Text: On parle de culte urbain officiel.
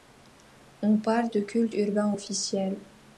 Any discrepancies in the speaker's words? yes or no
no